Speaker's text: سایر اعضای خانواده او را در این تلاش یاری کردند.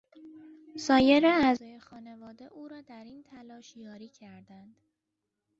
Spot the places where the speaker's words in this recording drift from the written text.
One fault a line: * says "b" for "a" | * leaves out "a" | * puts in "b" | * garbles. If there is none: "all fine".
all fine